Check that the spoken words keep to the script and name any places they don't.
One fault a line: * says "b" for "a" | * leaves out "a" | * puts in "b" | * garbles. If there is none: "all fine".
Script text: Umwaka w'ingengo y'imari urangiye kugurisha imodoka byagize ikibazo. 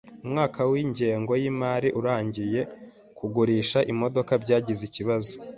all fine